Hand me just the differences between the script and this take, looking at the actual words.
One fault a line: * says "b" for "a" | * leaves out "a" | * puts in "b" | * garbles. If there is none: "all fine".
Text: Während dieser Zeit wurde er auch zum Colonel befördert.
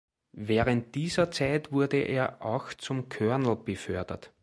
all fine